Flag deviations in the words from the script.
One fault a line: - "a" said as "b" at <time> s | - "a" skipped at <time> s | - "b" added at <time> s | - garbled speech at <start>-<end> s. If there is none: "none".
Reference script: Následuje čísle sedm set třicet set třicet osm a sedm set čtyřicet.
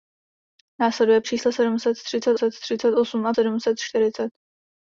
none